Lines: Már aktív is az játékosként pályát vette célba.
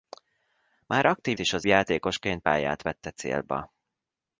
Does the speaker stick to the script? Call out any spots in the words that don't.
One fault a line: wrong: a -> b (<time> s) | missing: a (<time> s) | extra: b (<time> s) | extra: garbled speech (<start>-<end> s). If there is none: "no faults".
no faults